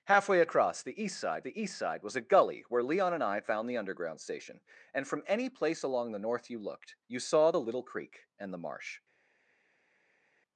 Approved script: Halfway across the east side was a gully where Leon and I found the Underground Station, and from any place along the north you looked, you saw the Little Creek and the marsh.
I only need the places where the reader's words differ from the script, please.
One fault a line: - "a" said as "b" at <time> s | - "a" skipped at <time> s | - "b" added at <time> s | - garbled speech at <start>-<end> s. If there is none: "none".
- "the east side" added at 1.4 s